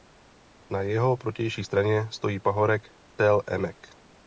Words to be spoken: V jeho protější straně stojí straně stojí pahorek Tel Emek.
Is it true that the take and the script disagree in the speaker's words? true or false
true